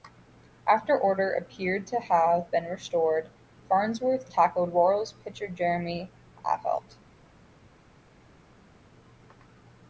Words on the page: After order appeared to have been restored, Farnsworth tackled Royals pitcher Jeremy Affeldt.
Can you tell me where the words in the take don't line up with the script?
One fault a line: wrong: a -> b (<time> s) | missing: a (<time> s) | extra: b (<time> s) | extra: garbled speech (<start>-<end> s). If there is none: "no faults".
no faults